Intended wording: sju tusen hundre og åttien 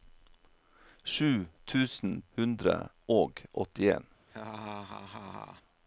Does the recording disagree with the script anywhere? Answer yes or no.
no